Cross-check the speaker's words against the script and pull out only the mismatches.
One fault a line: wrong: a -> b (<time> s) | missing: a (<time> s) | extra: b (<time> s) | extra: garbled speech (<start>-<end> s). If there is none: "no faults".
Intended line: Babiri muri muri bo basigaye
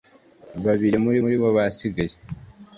no faults